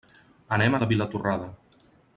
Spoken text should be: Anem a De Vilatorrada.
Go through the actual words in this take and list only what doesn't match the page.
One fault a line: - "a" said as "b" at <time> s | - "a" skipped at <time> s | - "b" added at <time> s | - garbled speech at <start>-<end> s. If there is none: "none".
none